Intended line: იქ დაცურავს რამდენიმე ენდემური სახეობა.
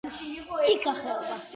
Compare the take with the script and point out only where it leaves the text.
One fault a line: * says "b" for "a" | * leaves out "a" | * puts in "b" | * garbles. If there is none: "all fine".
* leaves out "დაცურავს რამდენიმე ენდემური"